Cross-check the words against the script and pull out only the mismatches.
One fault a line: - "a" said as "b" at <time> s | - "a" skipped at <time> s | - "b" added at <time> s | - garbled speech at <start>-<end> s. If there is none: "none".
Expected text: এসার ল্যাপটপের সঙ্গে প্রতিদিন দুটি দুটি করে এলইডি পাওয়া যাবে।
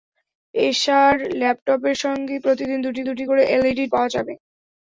none